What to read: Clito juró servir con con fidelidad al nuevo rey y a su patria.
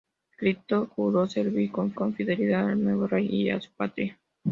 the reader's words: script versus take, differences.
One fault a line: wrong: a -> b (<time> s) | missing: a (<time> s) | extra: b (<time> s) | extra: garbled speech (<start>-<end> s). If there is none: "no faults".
no faults